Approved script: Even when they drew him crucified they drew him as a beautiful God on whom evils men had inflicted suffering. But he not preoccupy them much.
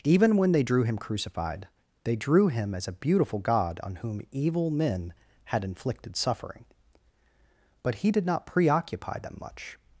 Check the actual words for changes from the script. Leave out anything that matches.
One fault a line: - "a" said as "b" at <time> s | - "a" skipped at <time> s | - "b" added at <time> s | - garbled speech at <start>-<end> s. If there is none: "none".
- "evils" said as "evil" at 4.3 s
- "did" added at 8.1 s